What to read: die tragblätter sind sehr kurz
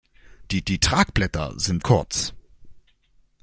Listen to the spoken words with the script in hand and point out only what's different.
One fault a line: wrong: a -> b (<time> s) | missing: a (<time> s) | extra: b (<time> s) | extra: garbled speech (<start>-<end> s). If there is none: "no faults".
extra: die (0.7 s)
missing: sehr (1.8 s)